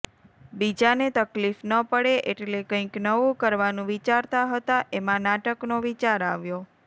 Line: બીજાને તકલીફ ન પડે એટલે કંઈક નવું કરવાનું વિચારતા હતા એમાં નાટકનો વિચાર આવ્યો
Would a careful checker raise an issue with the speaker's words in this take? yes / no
no